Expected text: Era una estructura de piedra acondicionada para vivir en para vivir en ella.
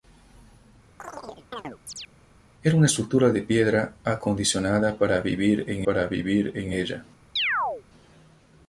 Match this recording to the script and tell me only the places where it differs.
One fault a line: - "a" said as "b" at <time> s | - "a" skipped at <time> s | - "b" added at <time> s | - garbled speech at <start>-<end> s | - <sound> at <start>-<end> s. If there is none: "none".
- chirp at 1.0-2.1 s
- chirp at 7.4-7.8 s